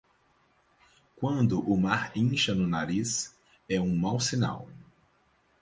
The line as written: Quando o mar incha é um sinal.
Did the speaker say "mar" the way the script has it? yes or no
yes